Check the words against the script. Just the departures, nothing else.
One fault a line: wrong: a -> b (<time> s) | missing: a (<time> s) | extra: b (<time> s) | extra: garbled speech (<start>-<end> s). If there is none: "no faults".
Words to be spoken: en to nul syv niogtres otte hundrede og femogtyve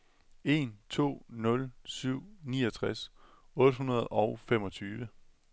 no faults